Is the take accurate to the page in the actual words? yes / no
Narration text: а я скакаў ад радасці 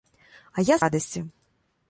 no